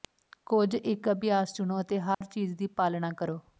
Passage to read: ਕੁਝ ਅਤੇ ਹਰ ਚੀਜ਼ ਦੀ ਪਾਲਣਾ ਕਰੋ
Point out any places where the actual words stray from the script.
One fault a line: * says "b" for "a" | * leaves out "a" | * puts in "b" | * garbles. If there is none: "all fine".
* puts in "ਇੱਕ ਅਭਿਆਸ ਚੁਣੋ"